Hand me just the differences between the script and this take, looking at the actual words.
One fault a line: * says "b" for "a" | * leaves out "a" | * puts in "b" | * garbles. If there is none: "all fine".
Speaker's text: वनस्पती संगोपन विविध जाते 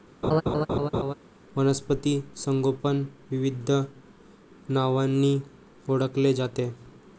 * puts in "नावांनी ओळखले"